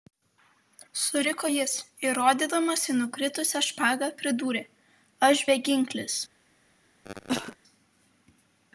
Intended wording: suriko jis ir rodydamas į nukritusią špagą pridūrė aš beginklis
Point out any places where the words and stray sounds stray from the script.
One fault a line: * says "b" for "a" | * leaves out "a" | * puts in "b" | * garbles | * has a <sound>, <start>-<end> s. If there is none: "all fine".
* has a cough, 7.0-7.6 s